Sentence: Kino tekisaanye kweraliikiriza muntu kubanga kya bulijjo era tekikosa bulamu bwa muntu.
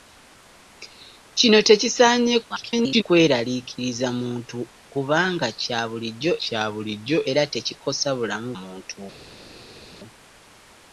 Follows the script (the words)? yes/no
no